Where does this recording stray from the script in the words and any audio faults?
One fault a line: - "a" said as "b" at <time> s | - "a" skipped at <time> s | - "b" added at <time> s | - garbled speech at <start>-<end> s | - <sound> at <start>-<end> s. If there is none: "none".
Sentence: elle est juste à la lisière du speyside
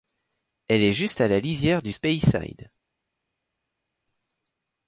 none